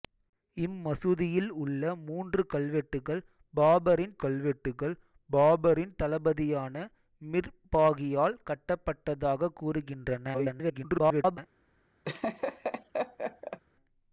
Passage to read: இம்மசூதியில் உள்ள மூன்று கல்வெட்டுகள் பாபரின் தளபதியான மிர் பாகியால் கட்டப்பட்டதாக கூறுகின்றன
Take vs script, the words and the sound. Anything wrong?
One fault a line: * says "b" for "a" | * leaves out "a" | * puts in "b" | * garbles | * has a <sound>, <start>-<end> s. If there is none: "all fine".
* puts in "கல்வெட்டுகள் பாபரின்"
* garbles
* has a laugh, 12.0-13.6 s